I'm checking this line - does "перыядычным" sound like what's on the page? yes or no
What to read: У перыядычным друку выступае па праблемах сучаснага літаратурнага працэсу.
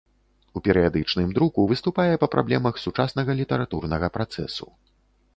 yes